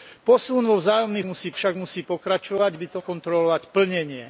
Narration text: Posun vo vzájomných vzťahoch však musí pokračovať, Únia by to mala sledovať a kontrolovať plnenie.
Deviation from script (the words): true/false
true